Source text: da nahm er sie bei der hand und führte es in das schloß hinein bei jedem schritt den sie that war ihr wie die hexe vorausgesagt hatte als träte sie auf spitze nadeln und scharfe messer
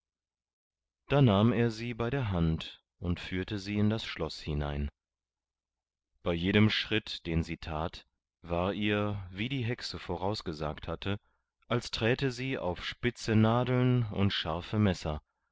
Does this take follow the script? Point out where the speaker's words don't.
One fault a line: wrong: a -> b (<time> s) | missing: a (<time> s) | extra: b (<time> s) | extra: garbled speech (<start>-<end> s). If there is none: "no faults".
wrong: es -> sie (3.6 s)